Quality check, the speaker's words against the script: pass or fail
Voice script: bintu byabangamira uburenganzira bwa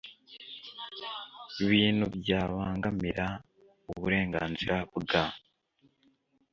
pass